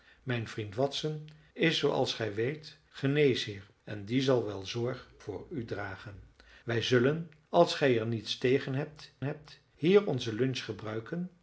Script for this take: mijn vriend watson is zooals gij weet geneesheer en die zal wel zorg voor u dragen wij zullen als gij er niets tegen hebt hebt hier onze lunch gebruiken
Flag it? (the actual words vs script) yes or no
no